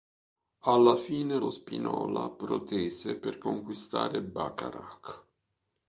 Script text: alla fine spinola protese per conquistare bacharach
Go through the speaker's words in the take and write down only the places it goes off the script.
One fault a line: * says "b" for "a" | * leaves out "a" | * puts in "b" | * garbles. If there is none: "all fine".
* puts in "lo"